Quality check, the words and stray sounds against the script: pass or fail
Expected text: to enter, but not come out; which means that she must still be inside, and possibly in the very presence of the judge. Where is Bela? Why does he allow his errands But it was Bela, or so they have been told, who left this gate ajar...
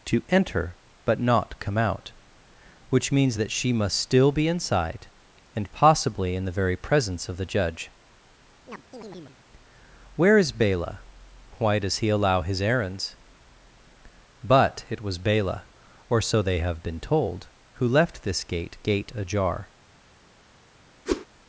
fail